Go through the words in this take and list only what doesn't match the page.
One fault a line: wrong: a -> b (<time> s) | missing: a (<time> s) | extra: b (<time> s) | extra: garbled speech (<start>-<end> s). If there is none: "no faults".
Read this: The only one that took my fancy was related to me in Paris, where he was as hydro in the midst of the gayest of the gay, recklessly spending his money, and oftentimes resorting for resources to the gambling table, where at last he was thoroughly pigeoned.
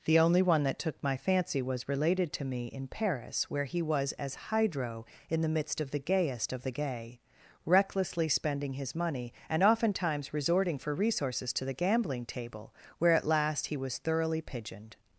no faults